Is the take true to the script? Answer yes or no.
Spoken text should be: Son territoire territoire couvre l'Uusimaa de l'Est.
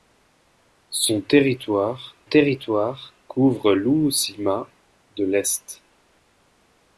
yes